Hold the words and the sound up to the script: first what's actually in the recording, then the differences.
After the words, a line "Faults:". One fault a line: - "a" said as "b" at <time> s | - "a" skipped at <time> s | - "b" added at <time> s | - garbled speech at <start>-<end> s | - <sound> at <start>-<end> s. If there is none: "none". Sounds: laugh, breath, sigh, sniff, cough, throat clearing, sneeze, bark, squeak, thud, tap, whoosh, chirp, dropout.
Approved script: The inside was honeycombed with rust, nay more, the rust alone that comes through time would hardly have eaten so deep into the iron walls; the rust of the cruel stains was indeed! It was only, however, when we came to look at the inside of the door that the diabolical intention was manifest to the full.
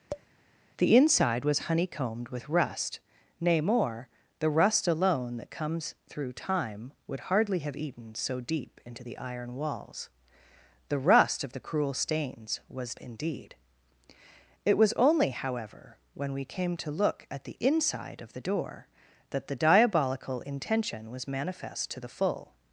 The inside was honeycombed with rust, nay more, the rust alone that comes through time would hardly have eaten so deep into the iron walls; the rust of the cruel stains was indeed! It was only, however, when we came to look at the inside of the door that the diabolical intention was manifest to the full.
Faults:
- tap at 0.1-0.3 s